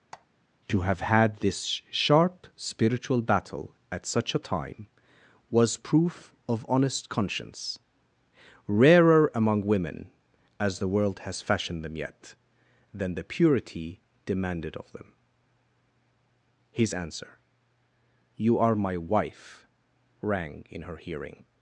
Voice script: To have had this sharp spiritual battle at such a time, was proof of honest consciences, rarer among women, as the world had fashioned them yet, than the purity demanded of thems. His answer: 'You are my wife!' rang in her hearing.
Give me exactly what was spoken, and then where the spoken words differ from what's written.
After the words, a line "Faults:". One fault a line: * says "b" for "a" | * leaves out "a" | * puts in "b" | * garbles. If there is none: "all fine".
To have had this sharp spiritual battle at such a time, was proof of honest conscience, rarer among women, as the world has fashioned them yet, than the purity demanded of them. His answer: 'You are my wife!' rang in her hearing.
Faults:
* says "conscience" for "consciences"
* says "has" for "had"
* says "them" for "thems"